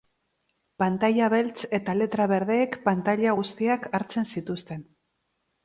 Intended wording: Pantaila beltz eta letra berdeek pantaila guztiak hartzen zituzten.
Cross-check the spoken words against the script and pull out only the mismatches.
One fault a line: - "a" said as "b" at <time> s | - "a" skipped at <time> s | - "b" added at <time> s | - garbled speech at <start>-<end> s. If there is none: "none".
none